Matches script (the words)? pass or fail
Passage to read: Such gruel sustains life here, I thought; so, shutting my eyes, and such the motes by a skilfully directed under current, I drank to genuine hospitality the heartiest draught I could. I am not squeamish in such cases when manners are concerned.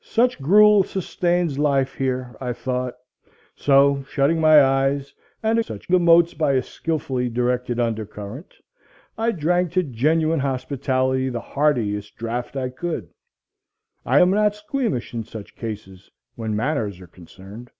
pass